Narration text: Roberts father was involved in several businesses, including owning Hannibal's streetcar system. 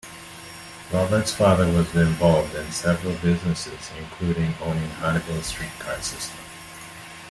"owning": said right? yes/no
yes